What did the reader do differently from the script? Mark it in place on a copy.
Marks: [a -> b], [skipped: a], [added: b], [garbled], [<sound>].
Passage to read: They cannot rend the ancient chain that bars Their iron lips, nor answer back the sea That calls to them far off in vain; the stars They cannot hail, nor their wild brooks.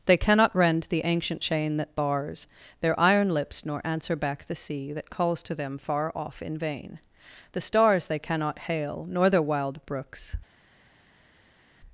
They cannot rend the ancient chain that bars Their iron lips, nor answer back the sea That calls to them far off in vain; the stars They cannot hail, nor their wild brooks.